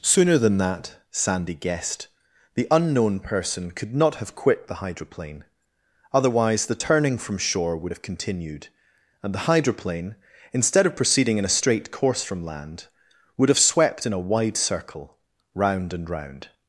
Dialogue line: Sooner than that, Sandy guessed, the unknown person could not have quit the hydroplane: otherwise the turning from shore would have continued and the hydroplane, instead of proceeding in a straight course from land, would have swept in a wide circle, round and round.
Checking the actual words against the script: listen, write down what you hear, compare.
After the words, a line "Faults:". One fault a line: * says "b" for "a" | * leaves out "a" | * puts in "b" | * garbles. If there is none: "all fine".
Sooner than that, Sandy guessed, the unknown person could not have quit the hydroplane: otherwise the turning from shore would have continued and the hydroplane, instead of proceeding in a straight course from land, would have swept in a wide circle, round and round.
Faults:
all fine